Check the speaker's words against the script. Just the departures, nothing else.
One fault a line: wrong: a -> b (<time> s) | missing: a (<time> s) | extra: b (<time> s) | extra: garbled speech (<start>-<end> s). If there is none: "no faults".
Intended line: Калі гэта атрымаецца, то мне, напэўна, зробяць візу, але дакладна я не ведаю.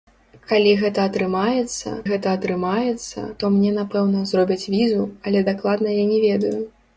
extra: гэта атрымаецца (2.1 s)